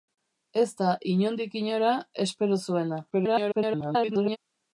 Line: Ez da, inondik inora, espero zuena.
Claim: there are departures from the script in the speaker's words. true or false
true